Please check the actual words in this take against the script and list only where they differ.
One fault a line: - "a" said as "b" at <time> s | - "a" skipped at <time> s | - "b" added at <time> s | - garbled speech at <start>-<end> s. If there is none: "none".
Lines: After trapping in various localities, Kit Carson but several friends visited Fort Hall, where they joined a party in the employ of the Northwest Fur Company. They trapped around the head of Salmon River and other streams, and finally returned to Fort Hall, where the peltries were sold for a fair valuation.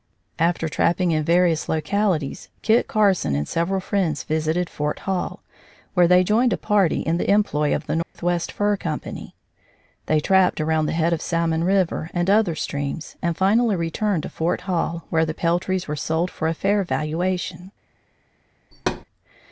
- "but" said as "and" at 3.4 s